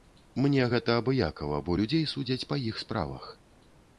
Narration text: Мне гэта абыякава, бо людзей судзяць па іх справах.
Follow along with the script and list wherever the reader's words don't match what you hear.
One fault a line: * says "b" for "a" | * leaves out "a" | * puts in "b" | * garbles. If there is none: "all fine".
all fine